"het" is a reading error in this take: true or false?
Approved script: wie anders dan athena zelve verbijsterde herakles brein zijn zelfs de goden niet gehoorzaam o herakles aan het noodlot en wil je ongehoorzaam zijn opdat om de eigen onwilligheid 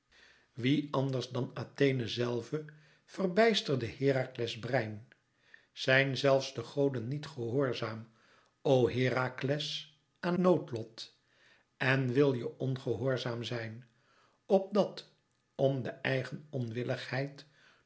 true